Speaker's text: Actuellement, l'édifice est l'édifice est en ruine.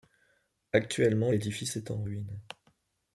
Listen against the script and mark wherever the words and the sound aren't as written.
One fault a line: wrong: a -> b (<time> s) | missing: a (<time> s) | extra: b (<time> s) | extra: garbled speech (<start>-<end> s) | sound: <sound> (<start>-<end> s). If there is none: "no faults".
missing: l'édifice est (1.9 s)